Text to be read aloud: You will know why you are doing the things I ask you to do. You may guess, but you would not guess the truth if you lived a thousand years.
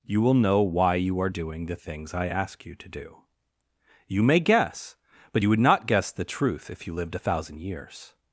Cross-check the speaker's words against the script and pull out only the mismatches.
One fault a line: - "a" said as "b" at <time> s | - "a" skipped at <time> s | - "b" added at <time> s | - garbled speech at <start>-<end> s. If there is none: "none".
none